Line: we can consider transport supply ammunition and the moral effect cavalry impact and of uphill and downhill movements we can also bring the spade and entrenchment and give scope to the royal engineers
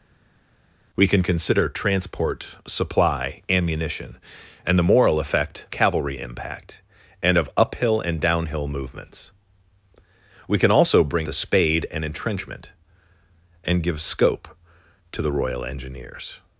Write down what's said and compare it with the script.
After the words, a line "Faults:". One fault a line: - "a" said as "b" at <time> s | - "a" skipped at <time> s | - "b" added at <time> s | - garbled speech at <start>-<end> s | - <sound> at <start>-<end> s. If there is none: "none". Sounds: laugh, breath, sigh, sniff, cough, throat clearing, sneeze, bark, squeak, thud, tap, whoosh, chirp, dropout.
we can consider transport supply ammunition and the moral effect cavalry impact and of uphill and downhill movements we can also bring the spade and entrenchment and give scope to the royal engineers
Faults:
none